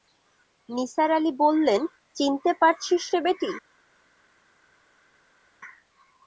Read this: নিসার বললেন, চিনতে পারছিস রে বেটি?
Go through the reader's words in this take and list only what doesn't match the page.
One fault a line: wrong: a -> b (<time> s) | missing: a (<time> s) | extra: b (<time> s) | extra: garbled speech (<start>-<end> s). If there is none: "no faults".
extra: আলি (1.2 s)